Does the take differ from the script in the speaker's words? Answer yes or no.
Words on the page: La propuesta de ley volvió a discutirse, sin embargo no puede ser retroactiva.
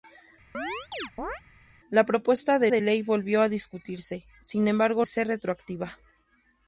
yes